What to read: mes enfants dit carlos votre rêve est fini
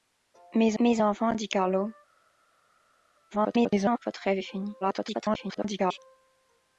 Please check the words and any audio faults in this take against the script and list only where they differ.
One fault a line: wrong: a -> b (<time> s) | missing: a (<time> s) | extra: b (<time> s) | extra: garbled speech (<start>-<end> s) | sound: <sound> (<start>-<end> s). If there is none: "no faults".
extra: mes (0.8 s)
extra: garbled speech (3.3-4.0 s)
extra: garbled speech (4.8-6.0 s)